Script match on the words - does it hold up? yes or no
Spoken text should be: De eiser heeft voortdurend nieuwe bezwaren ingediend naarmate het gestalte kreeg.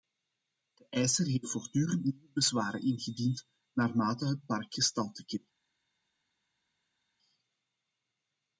no